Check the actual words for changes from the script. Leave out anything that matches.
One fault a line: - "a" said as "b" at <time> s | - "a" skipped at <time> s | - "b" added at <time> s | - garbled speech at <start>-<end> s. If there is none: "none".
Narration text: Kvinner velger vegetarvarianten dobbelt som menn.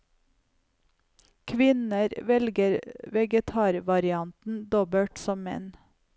none